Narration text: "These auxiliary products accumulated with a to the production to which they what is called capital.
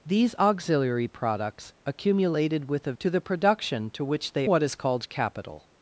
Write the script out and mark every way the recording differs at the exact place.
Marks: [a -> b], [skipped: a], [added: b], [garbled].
"These auxiliary products accumulated with a to the production to which they what is called capital.